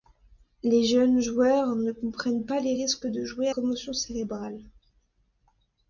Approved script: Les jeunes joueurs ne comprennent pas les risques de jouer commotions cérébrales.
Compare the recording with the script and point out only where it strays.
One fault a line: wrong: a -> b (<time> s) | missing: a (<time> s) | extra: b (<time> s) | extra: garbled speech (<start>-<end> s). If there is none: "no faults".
no faults